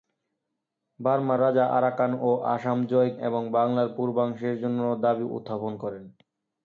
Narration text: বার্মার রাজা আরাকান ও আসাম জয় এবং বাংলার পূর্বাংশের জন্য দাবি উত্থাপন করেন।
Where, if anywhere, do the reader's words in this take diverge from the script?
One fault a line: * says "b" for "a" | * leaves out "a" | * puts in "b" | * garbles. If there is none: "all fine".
all fine